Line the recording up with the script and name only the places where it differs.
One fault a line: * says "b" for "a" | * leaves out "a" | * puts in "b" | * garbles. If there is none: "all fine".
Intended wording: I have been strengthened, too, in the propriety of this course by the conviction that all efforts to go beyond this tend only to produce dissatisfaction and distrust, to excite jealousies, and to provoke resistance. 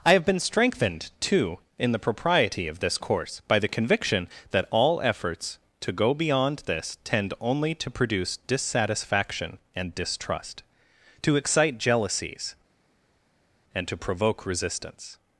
all fine